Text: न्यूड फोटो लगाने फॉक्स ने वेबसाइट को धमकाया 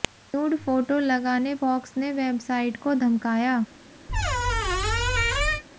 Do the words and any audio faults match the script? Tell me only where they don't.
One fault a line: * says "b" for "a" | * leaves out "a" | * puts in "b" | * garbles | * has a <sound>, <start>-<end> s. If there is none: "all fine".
* has a squeak, 4.1-5.6 s